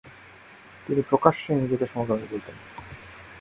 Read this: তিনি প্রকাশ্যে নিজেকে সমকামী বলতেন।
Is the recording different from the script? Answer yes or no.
no